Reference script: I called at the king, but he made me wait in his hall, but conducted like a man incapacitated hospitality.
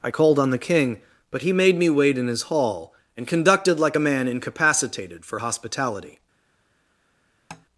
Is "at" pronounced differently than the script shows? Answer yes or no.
yes